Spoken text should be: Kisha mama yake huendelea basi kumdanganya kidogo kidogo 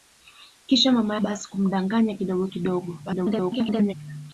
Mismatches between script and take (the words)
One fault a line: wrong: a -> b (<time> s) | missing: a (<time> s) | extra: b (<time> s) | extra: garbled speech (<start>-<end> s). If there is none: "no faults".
missing: yake huendelea (1.1 s)
extra: garbled speech (3.1-3.9 s)